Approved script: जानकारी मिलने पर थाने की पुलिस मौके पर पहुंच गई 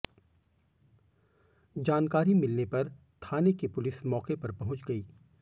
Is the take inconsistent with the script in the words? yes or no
no